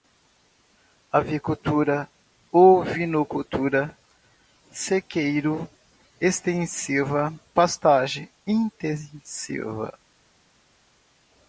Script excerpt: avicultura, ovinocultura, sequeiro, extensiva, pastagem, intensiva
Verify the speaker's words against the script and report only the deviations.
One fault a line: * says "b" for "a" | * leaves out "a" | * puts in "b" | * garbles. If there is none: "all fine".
all fine